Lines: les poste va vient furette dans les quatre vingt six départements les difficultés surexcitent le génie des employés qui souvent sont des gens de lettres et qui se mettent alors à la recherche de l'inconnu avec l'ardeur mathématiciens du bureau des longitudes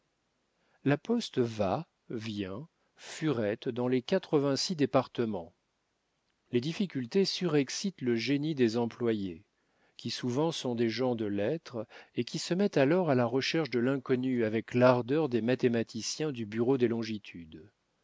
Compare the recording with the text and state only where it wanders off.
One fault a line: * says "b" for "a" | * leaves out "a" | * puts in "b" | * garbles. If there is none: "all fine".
* says "la" for "les"
* puts in "des"